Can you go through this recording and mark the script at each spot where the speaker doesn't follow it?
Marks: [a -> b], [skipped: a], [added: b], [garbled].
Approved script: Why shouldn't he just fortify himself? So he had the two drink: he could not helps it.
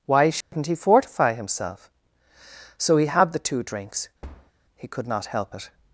Why shouldn't he [skipped: just] fortify himself? So he had the two [drink: -> drinks] he could not [helps -> help] it.